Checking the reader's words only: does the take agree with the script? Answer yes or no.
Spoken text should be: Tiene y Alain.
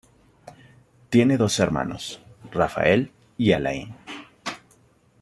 no